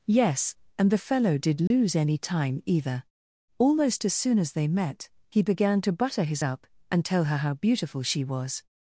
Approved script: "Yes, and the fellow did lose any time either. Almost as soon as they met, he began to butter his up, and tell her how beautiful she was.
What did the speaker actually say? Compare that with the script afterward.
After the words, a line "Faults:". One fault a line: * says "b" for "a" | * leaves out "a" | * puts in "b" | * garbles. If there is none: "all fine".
"Yes, and the fellow did lose any time either. Almost as soon as they met, he began to butter his up, and tell her how beautiful she was.
Faults:
all fine